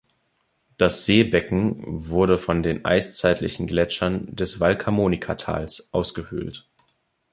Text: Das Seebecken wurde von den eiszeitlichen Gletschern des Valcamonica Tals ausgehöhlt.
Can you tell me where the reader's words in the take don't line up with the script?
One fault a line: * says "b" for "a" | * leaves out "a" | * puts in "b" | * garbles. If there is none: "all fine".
all fine